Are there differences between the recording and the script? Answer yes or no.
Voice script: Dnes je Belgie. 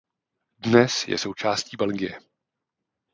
yes